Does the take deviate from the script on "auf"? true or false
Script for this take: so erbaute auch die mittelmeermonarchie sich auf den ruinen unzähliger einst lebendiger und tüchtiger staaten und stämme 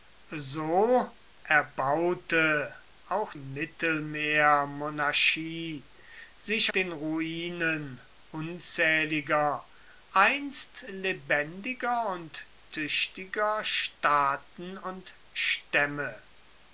true